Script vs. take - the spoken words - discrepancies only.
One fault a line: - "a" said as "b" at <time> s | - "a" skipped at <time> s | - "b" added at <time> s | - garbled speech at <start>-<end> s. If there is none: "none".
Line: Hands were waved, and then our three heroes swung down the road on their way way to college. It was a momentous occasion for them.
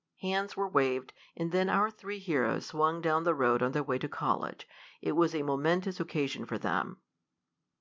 - "way" skipped at 4.0 s